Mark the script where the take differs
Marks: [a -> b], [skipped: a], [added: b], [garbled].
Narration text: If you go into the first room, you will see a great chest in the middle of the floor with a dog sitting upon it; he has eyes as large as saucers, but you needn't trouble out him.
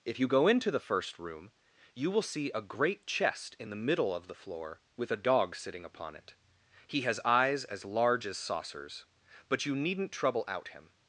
If you go into the first room, you will see a great chest in the middle of the floor with a dog sitting upon it; he has eyes as large as saucers, but you needn't trouble out him.